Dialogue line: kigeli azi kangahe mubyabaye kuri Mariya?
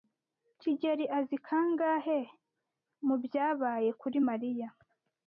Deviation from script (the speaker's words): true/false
false